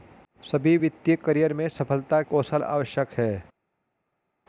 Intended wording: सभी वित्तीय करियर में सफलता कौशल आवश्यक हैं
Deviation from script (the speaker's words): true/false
false